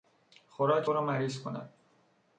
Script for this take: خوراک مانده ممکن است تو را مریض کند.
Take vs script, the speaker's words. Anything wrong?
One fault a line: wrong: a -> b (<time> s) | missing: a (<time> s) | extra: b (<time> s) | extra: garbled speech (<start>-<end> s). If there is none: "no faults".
missing: مانده ممکن است (0.9 s)